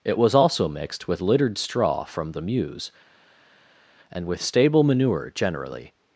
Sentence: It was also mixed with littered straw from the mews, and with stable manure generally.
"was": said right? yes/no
yes